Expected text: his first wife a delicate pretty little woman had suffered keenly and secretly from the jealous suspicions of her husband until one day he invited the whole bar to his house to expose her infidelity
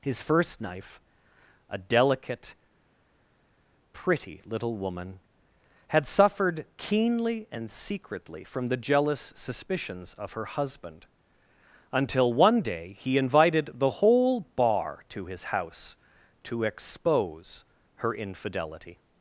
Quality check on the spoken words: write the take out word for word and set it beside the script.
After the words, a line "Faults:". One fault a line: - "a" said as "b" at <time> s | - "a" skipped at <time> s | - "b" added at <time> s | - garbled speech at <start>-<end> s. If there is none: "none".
his first knife a delicate pretty little woman had suffered keenly and secretly from the jealous suspicions of her husband until one day he invited the whole bar to his house to expose her infidelity
Faults:
- "wife" said as "knife" at 0.6 s